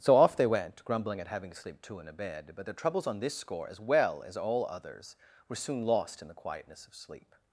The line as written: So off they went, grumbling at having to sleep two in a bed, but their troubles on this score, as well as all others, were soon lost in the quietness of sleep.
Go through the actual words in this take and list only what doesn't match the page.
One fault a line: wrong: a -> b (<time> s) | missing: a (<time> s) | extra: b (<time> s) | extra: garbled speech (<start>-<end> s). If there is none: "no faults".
no faults